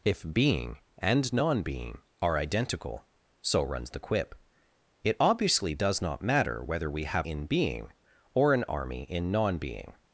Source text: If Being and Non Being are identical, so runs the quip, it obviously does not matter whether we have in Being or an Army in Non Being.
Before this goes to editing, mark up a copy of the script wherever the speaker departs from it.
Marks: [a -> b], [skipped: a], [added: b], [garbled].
If Being and Non Being are identical, so runs the quip, it obviously does not matter whether we have in Being or an Army in Non Being.